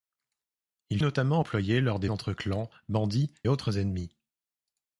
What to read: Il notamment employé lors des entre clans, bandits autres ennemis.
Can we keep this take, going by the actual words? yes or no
yes